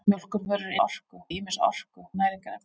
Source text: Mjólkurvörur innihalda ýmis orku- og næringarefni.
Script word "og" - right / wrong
wrong